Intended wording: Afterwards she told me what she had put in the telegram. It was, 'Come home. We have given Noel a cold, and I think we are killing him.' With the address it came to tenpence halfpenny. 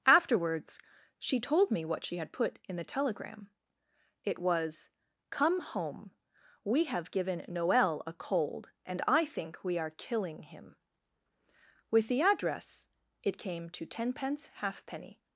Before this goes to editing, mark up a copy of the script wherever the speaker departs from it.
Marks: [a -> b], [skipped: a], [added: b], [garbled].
Afterwards she told me what she had put in the telegram. It was, 'Come home. We have given Noel a cold, and I think we are killing him.' With the address it came to tenpence halfpenny.